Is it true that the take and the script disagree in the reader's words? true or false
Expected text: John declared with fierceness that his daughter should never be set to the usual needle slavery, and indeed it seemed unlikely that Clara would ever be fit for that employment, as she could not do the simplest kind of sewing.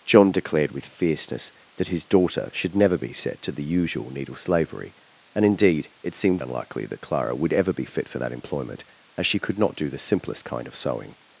false